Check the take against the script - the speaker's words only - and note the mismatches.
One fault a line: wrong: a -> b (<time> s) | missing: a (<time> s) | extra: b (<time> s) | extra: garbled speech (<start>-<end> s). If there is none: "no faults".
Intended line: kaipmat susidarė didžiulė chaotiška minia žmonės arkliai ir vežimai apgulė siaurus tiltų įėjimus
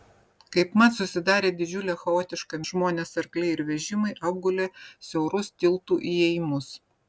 missing: minia (2.6 s)